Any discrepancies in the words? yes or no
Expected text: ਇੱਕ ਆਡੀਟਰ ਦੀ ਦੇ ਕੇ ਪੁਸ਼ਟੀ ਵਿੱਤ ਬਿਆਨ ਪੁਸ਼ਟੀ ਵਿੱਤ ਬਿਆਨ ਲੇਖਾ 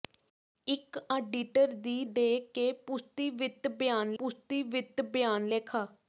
no